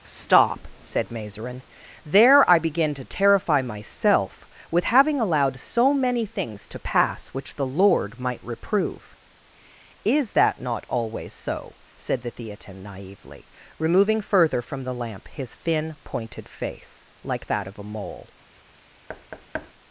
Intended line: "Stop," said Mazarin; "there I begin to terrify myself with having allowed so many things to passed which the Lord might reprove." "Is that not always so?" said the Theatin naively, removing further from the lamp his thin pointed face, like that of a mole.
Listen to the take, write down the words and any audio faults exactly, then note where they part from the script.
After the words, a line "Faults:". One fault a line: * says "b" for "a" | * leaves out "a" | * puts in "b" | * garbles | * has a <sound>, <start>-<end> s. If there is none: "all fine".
"Stop," said Mazarin; "there I begin to terrify myself with having allowed so many things to pass which the Lord might reprove." "Is that not always so?" said the Theatin naively, removing further from the lamp his thin pointed face, like that of a mole.
Faults:
* says "pass" for "passed"
* has a thud, 19.1-19.7 s